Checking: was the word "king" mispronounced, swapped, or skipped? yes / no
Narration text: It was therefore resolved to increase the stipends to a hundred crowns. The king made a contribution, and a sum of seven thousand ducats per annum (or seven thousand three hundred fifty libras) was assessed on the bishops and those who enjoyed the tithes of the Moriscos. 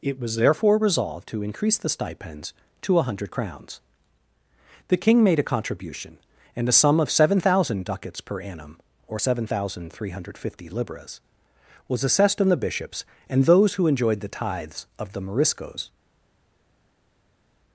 no